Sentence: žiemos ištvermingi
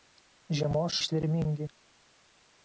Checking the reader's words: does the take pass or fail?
pass